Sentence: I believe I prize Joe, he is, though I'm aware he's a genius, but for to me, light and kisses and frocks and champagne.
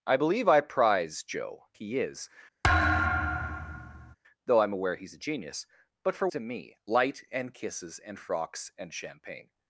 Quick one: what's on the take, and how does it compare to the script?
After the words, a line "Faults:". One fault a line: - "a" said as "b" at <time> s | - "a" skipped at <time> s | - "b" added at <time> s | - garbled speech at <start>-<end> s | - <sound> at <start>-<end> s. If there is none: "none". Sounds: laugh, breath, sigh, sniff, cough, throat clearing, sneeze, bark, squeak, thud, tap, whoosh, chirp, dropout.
I believe I prize Joe, he is, though I'm aware he's a genius, but for to me, light and kisses and frocks and champagne.
Faults:
- thud at 2.6-4.2 s